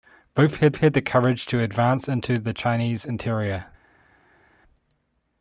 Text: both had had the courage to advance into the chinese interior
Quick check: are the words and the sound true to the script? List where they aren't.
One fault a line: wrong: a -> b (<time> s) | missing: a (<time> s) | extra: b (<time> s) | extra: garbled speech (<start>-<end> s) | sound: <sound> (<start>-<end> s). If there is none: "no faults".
no faults